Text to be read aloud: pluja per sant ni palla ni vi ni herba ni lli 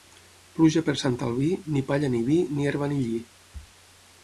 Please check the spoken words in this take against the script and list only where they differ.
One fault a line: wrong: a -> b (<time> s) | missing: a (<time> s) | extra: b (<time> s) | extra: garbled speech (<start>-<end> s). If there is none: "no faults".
extra: albí (1.3 s)